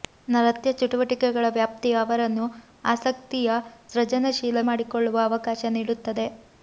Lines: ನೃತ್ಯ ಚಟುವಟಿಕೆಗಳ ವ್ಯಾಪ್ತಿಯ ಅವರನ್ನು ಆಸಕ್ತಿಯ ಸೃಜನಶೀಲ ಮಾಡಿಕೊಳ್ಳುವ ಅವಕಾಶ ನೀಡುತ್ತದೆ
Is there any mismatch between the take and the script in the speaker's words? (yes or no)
no